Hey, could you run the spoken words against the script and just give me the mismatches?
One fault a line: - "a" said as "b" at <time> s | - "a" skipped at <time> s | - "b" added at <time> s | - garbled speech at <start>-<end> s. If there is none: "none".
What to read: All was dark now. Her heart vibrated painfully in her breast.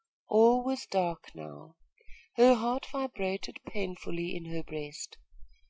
none